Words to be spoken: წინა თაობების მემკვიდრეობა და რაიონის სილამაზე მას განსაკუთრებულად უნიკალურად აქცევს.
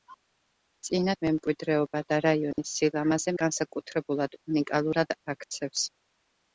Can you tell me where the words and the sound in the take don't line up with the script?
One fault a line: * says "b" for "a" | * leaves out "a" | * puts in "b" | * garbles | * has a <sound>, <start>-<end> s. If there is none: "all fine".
* leaves out "თაობების"
* has a dropout, 2.5-2.6 s
* leaves out "მას"